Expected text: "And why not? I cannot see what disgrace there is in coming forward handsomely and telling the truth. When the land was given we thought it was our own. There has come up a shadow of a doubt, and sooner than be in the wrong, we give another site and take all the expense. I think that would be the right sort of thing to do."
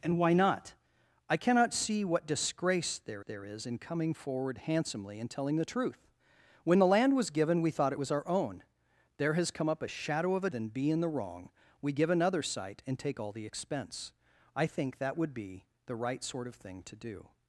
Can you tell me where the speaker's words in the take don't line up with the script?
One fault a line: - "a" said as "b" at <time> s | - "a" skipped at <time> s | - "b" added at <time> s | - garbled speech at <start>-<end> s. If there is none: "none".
- "there" added at 3.2 s
- "doubt and sooner" skipped at 10.5 s